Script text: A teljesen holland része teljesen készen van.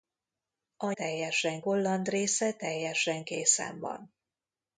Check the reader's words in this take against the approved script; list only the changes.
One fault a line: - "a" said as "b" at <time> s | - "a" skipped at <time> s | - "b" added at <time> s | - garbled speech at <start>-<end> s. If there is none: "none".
none